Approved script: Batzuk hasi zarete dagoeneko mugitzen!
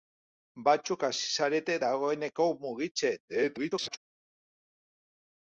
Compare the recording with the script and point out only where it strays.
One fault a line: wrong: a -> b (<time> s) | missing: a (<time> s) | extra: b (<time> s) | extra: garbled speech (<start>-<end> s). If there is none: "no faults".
extra: garbled speech (3.3-4.0 s)